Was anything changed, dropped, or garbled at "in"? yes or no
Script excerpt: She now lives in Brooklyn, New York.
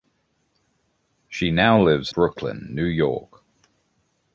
yes